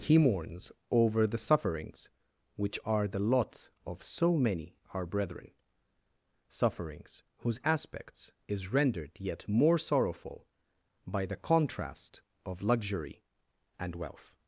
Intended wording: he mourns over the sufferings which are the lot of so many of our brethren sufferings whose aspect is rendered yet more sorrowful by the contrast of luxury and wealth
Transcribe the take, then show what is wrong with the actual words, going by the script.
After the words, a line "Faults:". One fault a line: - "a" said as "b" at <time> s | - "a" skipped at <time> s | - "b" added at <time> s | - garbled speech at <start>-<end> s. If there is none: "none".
he mourns over the sufferings which are the lot of so many our brethren sufferings whose aspects is rendered yet more sorrowful by the contrast of luxury and wealth
Faults:
- "of" skipped at 4.8 s
- "aspect" said as "aspects" at 7.6 s